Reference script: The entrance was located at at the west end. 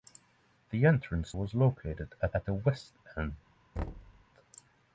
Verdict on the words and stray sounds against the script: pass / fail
fail